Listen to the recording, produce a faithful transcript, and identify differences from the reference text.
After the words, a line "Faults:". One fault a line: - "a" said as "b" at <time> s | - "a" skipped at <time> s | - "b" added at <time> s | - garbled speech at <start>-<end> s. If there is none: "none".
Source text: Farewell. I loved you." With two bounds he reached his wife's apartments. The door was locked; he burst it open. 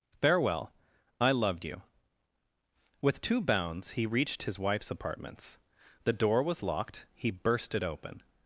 Farewell. I loved you." With two bounds he reached his wife's apartments. The door was locked; he burst it open.
Faults:
none